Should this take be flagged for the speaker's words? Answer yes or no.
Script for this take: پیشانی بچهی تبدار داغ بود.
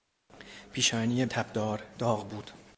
yes